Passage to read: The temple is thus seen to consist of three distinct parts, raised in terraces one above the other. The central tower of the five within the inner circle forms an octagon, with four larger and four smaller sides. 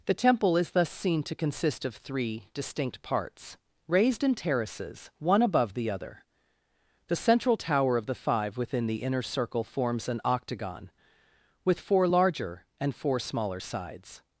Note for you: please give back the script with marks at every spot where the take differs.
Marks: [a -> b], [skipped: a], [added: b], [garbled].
The temple is thus seen to consist of three distinct parts, raised in terraces one above the other. The central tower of the five within the inner circle forms an octagon, with four larger and four smaller sides.